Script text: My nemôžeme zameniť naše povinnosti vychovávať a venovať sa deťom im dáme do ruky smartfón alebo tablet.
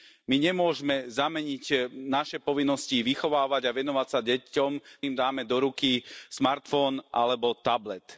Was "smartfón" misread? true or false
false